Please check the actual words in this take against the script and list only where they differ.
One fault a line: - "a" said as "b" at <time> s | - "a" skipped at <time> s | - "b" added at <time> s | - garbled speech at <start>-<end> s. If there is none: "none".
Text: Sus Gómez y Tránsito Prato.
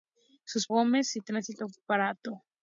none